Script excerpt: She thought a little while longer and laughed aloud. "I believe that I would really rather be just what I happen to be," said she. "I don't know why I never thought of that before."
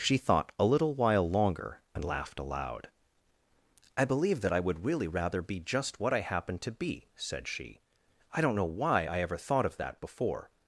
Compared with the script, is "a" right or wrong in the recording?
right